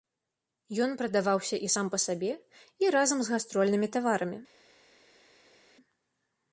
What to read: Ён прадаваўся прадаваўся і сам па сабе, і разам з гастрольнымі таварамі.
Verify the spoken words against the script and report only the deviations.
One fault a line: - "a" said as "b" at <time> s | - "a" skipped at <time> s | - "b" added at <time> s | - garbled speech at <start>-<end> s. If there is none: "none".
- "прадаваўся" skipped at 1.6 s